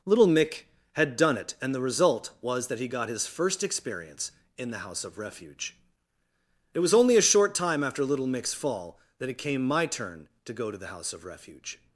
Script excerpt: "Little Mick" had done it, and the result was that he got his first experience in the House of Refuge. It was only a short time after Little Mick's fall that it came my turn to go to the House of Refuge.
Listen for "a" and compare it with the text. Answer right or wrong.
right